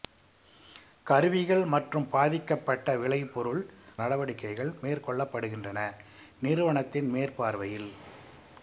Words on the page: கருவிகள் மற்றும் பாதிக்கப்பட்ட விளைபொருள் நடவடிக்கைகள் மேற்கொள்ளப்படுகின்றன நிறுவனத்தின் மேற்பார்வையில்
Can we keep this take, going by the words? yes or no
yes